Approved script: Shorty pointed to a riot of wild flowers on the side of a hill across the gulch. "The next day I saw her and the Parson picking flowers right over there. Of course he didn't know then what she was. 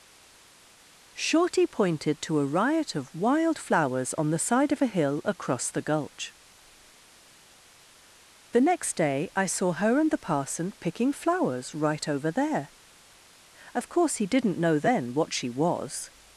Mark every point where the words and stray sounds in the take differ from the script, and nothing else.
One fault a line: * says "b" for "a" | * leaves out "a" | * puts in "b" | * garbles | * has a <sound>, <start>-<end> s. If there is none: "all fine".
all fine